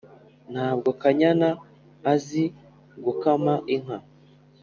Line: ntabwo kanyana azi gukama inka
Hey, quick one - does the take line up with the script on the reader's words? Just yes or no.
yes